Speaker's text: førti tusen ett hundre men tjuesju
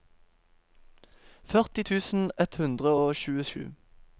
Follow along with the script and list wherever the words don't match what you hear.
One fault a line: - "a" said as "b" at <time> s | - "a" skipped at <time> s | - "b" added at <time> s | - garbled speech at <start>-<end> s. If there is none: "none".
- "men" said as "og" at 3.0 s